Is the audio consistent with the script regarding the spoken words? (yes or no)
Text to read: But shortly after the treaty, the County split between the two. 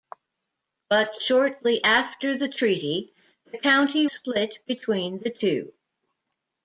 yes